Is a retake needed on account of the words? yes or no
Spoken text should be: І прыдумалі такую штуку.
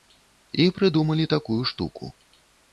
no